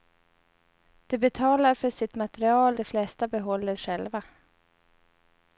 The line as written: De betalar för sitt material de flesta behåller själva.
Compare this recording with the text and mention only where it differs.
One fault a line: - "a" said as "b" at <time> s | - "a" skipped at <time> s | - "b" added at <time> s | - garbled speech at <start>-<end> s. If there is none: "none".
none